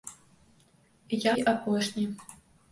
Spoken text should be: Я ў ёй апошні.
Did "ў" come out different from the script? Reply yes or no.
yes